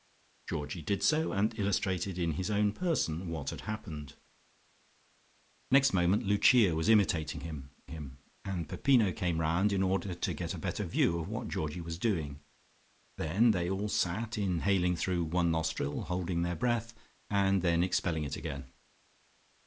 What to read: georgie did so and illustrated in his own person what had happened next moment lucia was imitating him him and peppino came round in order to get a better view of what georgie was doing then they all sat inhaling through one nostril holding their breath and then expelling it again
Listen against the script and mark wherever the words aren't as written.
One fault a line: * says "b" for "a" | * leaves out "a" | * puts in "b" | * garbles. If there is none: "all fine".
all fine